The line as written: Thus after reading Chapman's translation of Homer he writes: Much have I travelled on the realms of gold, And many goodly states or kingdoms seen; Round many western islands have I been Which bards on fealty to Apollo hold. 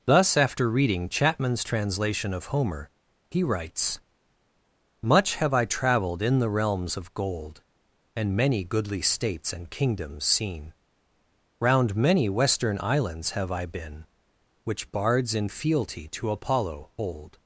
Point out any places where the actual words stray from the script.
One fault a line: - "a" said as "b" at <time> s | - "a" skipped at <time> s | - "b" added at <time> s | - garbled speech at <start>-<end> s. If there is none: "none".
- "on" said as "in" at 6.2 s
- "or" said as "and" at 9.5 s
- "on" said as "in" at 15.3 s